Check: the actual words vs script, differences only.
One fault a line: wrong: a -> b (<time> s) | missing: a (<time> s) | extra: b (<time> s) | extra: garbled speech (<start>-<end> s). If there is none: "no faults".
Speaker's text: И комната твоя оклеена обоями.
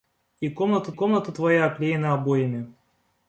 extra: комната (0.9 s)